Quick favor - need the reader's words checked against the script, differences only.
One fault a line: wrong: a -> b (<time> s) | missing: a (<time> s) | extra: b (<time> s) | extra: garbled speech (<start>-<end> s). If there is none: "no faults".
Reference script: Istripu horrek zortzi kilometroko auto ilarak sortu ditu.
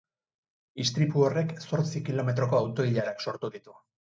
no faults